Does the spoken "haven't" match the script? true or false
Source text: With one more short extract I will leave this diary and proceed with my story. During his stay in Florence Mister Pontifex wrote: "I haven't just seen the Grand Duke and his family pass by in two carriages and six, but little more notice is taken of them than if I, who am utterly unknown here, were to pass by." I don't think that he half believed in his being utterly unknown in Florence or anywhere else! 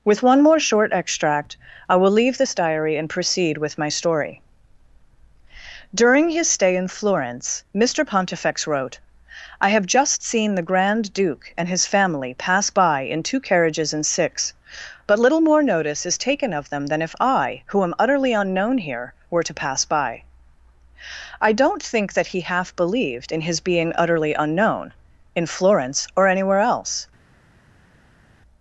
false